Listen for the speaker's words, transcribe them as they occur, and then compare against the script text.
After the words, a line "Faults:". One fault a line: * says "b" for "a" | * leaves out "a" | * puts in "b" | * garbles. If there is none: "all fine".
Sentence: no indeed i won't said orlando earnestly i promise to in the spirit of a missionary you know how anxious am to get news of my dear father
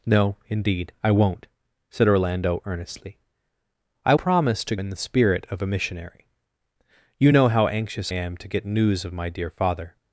no indeed i won't said orlando earnestly i promise to in the spirit of a missionary you know how anxious am to get news of my dear father
Faults:
all fine